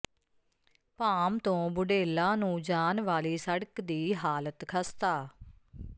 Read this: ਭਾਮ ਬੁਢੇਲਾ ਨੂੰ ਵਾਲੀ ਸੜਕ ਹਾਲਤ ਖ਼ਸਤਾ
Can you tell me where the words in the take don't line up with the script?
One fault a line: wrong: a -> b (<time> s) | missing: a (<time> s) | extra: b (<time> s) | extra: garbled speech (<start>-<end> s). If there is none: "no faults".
extra: ਤੋਂ (1.4 s)
extra: ਜਾਣ (2.6 s)
extra: ਦੀ (3.8 s)